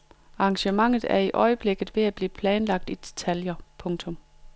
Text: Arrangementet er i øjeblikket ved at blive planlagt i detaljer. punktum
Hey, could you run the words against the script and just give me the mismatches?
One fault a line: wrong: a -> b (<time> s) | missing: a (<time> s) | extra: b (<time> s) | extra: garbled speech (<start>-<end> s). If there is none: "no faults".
no faults